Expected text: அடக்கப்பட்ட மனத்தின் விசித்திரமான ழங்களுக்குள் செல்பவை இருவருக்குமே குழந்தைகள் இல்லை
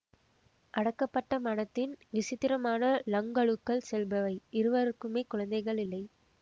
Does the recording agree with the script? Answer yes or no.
yes